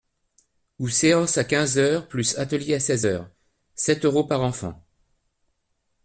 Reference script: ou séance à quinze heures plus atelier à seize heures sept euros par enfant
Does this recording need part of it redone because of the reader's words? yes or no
no